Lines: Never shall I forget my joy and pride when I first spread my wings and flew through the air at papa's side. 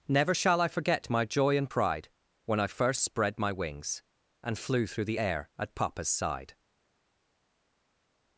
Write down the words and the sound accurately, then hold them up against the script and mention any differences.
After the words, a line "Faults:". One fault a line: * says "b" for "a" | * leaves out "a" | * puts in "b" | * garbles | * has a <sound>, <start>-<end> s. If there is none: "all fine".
Never shall I forget my joy and pride when I first spread my wings and flew through the air at papa's side.
Faults:
all fine